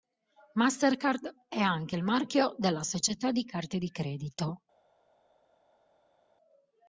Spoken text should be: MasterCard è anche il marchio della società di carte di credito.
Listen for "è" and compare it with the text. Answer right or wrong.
right